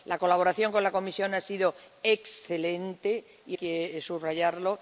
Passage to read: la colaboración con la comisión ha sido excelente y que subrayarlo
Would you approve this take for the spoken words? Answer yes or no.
yes